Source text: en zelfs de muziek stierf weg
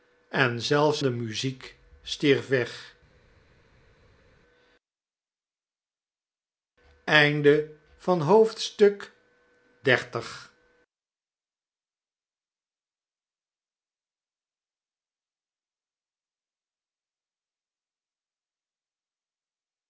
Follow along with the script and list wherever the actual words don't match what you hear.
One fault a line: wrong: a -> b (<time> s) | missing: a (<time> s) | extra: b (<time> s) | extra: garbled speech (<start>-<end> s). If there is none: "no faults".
no faults